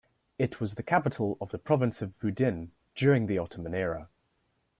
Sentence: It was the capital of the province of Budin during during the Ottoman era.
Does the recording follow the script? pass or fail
fail